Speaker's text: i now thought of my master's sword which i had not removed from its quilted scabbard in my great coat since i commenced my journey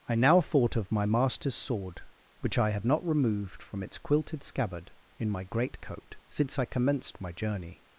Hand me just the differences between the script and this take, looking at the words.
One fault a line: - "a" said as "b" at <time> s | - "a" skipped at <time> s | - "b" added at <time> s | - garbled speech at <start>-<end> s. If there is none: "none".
none